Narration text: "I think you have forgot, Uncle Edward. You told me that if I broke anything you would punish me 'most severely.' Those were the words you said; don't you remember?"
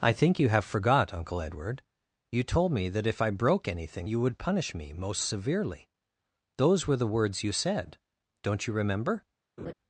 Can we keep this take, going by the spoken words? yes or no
yes